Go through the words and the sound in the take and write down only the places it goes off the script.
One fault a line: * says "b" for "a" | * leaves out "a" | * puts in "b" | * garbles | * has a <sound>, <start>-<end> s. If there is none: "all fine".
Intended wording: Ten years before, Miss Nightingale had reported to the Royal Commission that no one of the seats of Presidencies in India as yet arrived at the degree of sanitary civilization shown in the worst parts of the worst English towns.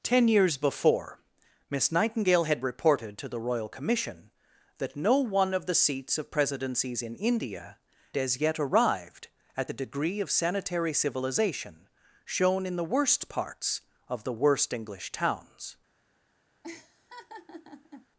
* has a laugh, 16.6-18.1 s